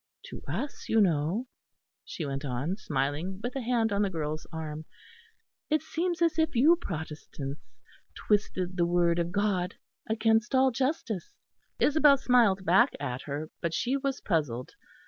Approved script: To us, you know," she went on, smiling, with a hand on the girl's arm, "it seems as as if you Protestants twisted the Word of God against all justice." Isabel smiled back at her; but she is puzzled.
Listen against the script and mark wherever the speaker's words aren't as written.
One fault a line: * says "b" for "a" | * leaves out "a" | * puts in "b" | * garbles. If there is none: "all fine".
* leaves out "as"
* says "was" for "is"